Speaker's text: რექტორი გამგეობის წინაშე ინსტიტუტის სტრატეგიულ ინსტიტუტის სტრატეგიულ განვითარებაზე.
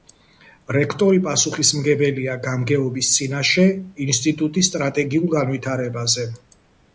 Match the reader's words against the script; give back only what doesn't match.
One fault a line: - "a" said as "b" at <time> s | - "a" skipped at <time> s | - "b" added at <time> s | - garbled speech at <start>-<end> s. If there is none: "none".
- "პასუხისმგებელია" added at 1.2 s
- "ინსტიტუტის სტრატეგიულ" skipped at 5.3 s